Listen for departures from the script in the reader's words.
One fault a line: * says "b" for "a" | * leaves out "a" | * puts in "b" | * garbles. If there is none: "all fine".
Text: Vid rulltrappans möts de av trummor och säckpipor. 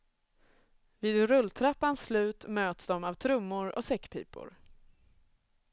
* puts in "slut"